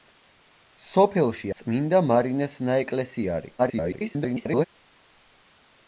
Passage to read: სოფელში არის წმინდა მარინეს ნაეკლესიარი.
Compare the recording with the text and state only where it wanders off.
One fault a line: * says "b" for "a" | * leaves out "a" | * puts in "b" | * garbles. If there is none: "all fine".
* leaves out "არის"
* garbles